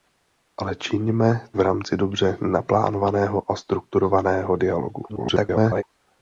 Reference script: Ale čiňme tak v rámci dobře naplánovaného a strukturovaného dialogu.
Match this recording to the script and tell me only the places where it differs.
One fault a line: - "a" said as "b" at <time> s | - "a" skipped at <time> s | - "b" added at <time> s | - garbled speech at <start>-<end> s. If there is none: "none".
- "tak" skipped at 1.5 s
- garbled speech at 5.1-5.8 s